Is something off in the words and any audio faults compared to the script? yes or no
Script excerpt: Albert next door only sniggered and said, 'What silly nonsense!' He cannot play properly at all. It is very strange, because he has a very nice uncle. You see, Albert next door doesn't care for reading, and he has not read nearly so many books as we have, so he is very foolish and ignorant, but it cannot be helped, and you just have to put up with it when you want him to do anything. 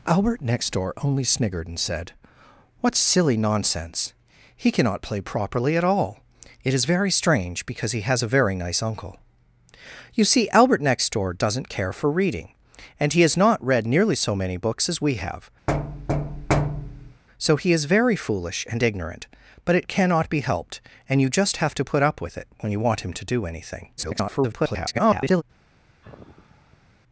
yes